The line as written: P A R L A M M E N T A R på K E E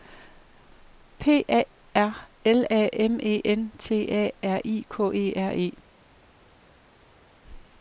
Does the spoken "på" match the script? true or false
false